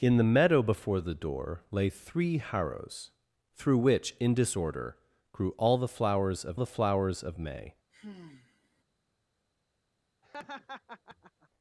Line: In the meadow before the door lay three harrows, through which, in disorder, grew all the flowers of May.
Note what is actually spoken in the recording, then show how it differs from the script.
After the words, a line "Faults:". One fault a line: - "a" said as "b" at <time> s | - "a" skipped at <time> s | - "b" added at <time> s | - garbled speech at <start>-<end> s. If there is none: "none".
In the meadow before the door lay three harrows, through which, in disorder, grew all the flowers of the flowers of May.
Faults:
- "the flowers of" added at 6.6 s